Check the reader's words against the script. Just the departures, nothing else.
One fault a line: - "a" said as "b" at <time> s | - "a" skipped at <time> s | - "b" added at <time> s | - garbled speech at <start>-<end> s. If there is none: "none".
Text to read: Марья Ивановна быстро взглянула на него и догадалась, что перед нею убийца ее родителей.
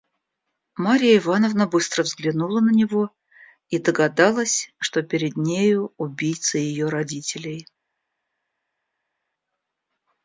none